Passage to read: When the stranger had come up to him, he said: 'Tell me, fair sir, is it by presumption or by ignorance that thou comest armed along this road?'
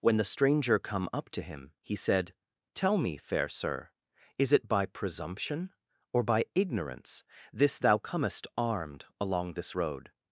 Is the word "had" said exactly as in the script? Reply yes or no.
no